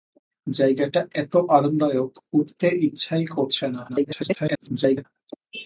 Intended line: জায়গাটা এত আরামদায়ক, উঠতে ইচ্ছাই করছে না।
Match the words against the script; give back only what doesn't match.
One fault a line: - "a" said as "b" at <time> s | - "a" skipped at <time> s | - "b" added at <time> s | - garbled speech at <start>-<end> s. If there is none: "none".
- garbled speech at 3.9-5.1 s